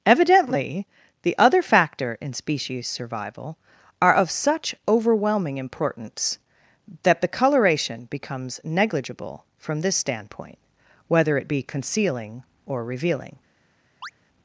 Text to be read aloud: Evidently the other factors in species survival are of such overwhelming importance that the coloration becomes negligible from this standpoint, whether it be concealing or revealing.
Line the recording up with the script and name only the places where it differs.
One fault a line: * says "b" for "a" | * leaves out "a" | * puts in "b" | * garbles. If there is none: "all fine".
* says "factor" for "factors"